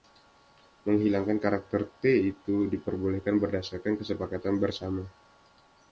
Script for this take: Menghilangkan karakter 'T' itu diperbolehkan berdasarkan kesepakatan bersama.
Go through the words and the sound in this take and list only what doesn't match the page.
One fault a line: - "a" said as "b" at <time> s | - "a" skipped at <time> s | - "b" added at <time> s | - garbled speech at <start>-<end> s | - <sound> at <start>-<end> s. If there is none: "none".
none